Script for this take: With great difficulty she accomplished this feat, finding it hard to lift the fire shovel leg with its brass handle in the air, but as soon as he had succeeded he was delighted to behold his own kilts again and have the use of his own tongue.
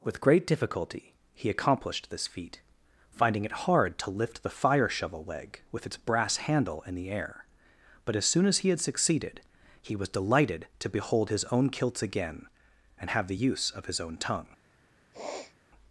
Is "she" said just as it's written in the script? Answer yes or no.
no